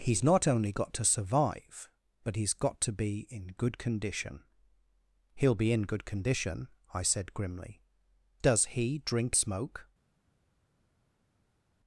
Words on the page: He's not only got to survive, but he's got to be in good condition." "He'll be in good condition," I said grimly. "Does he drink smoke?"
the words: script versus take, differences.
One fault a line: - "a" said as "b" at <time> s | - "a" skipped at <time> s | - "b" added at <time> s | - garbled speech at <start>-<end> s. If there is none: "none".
none